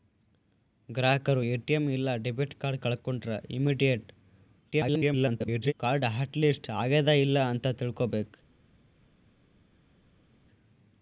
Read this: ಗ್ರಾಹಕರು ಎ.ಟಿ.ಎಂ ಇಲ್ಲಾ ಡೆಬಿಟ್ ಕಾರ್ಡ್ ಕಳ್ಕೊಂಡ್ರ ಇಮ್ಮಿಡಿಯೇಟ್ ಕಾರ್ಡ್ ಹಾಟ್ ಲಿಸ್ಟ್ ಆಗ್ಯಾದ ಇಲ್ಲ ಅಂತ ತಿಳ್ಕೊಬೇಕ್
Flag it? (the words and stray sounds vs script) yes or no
yes